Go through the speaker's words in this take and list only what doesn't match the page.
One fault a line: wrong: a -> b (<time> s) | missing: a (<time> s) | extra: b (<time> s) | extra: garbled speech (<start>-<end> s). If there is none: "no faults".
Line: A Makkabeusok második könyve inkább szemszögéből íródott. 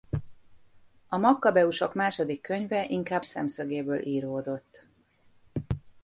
no faults